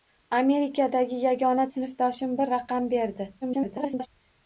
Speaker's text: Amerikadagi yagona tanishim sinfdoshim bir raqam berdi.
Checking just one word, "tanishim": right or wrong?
wrong